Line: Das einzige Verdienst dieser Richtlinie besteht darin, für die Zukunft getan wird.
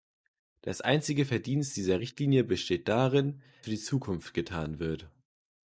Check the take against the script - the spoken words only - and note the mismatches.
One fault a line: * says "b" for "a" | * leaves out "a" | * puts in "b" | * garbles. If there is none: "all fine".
all fine